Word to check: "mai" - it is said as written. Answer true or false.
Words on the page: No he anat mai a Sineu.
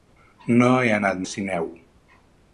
false